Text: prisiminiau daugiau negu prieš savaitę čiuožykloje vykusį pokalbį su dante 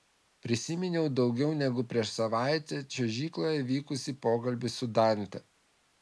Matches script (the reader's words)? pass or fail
pass